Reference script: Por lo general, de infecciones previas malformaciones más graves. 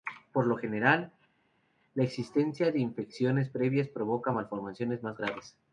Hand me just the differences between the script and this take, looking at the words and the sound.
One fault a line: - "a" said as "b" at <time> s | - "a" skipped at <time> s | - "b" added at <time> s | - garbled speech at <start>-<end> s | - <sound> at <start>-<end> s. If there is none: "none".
- "la existencia" added at 1.9 s
- "provoca" added at 3.9 s